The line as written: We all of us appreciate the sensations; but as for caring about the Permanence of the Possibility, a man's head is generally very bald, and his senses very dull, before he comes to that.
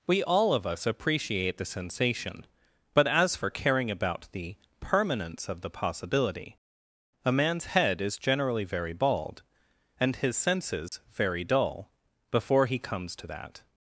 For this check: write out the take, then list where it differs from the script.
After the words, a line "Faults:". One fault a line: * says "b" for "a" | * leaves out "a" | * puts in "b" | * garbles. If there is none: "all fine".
We all of us appreciate the sensation; but as for caring about the Permanence of the Possibility, a man's head is generally very bald, and his senses very dull, before he comes to that.
Faults:
* says "sensation" for "sensations"